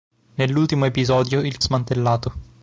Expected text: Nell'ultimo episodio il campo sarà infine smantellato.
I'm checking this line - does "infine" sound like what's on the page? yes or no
no